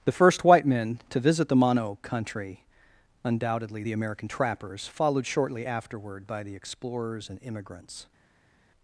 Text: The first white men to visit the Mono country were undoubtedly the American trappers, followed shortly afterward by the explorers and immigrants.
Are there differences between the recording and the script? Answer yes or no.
yes